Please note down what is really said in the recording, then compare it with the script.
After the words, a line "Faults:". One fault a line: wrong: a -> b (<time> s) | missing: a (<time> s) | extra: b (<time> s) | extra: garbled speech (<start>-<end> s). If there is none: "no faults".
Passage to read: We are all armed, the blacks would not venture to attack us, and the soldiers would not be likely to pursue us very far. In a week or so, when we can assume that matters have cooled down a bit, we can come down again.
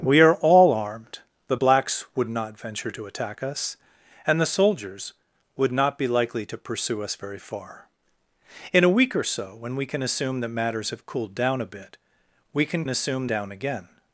We are all armed, the blacks would not venture to attack us, and the soldiers would not be likely to pursue us very far. In a week or so, when we can assume that matters have cooled down a bit, we can assume down again.
Faults:
wrong: come -> assume (12.9 s)